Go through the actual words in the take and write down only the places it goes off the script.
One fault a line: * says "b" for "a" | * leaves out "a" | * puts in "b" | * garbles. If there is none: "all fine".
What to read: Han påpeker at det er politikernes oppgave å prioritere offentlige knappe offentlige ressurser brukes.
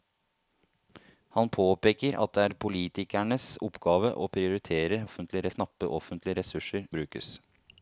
all fine